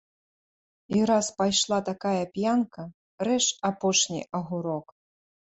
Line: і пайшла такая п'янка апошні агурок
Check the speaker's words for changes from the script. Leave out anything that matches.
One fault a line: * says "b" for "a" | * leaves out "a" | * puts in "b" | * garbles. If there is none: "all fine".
* puts in "раз"
* puts in "рэж"